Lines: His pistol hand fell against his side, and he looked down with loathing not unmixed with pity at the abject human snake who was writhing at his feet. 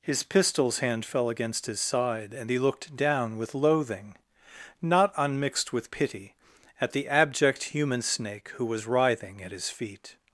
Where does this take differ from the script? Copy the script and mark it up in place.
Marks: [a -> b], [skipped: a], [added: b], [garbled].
His [pistol -> pistols] hand fell against his side, and he looked down with loathing not unmixed with pity at the abject human snake who was writhing at his feet.